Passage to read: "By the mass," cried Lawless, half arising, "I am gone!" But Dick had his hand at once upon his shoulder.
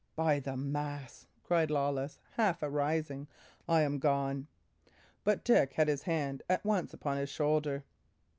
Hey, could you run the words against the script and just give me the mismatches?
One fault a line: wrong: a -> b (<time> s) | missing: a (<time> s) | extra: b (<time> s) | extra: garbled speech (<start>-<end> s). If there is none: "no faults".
no faults